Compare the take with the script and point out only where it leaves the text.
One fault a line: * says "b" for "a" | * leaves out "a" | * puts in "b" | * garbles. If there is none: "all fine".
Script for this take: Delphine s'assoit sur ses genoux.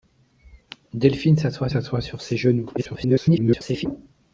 * puts in "s'assoit"
* garbles